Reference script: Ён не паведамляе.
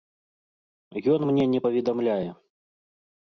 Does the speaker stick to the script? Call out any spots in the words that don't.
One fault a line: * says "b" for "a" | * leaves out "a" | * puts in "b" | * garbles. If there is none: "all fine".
* puts in "мне"